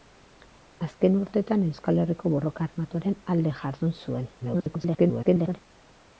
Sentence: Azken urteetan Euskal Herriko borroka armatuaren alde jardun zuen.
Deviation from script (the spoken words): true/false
true